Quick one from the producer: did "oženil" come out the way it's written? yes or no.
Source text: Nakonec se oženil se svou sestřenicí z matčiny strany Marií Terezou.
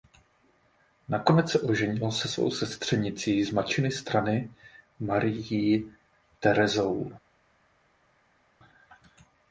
yes